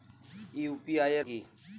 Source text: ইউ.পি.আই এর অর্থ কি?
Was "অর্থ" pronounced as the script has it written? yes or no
no